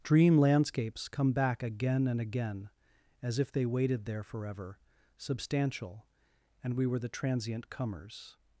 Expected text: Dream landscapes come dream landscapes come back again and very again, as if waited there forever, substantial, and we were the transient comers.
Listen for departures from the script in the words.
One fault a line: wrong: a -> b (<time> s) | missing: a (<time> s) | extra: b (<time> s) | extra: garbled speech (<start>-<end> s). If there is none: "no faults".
missing: dream landscapes come (1.3 s)
missing: very (2.2 s)
extra: they (3.5 s)